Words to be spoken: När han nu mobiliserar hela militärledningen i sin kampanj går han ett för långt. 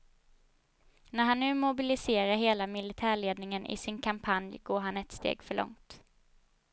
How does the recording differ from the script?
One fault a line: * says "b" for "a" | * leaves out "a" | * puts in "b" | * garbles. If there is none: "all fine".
* puts in "steg"